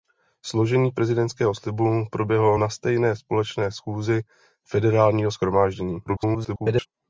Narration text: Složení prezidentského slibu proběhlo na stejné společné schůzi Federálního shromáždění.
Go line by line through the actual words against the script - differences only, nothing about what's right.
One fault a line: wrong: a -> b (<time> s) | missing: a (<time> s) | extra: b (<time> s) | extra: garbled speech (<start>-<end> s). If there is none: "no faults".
extra: garbled speech (6.1-6.9 s)